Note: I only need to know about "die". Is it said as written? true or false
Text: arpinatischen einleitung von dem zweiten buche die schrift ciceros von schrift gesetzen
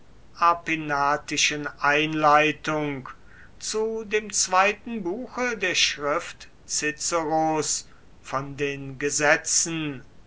false